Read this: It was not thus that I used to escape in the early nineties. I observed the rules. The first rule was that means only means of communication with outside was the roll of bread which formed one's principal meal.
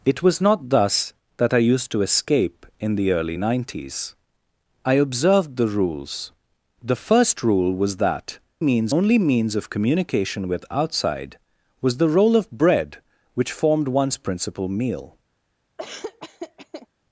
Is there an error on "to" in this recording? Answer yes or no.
no